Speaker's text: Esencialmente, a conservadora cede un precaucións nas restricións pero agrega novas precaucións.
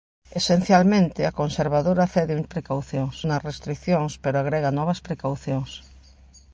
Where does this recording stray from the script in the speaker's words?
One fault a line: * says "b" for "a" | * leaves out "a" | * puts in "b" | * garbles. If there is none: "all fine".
all fine